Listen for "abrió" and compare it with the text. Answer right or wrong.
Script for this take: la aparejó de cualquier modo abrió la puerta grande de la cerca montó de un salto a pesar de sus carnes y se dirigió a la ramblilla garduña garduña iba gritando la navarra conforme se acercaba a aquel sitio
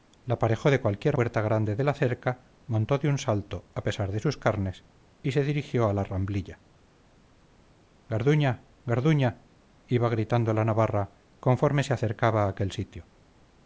wrong